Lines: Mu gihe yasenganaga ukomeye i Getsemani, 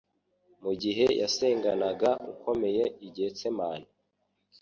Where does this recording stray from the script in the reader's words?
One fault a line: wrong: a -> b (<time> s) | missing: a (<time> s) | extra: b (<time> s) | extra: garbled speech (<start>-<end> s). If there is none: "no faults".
no faults